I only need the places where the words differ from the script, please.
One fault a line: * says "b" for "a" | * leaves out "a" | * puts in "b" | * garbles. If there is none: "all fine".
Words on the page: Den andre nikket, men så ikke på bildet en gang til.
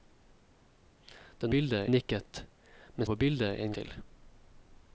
* says "bildet" for "andre"
* leaves out "så ikke"
* leaves out "gang"